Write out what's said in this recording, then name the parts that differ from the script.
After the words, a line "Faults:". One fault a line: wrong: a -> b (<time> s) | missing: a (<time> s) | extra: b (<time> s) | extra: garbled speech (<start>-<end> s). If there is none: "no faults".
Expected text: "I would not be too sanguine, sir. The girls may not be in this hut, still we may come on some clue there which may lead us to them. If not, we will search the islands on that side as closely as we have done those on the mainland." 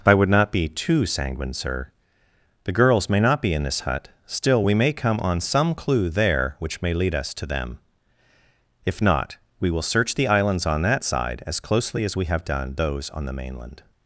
"I would not be too sanguine, sir. The girls may not be in this hut, still we may come on some clue there which may lead us to them. If not, we will search the islands on that side as closely as we have done those on the mainland."
Faults:
no faults